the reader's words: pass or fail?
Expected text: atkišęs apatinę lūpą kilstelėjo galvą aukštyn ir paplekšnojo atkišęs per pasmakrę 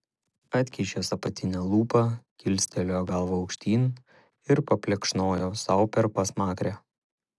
fail